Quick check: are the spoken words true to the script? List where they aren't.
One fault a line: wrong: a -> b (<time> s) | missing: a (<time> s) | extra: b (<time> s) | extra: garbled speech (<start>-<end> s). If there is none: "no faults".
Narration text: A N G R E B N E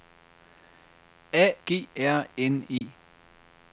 missing: N (1.6 s)
missing: E B (2.3 s)